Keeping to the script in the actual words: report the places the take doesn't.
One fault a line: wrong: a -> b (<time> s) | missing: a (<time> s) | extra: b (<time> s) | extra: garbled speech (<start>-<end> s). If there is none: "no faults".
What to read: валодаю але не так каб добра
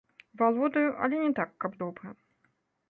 no faults